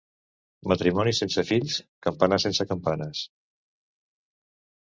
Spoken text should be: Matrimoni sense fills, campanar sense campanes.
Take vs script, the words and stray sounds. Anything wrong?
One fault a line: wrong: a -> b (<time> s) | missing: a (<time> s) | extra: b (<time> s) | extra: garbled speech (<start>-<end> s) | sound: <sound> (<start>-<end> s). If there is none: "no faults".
no faults